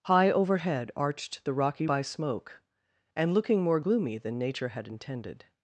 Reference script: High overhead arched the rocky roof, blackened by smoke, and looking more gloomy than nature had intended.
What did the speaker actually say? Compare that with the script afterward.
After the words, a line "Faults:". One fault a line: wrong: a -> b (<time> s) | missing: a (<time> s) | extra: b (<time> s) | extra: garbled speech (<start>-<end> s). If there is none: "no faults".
High overhead arched the rocky by smoke, and looking more gloomy than nature had intended.
Faults:
missing: roof blackened (1.9 s)